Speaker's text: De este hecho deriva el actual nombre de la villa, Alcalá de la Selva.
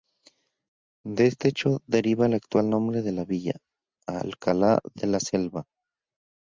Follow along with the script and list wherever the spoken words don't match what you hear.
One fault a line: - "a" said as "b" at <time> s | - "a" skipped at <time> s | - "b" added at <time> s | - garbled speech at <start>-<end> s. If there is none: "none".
none